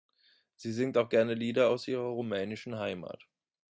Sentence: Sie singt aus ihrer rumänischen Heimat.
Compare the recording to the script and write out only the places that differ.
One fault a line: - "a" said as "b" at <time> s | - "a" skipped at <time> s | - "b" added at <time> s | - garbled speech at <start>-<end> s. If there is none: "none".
- "auch gerne Lieder" added at 1.0 s